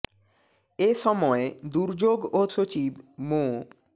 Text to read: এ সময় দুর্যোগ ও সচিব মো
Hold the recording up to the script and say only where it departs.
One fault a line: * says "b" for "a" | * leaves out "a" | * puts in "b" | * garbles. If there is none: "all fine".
all fine